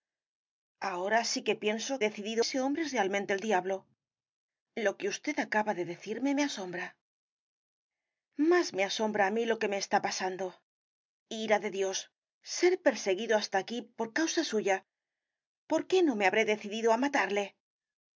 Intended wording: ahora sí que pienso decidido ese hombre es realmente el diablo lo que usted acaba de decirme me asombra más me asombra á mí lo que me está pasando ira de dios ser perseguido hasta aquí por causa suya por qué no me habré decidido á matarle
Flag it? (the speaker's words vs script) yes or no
no